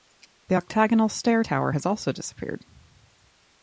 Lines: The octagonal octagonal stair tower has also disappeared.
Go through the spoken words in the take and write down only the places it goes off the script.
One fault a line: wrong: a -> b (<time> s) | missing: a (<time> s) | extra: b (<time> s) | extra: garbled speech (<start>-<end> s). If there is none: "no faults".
missing: octagonal (1.1 s)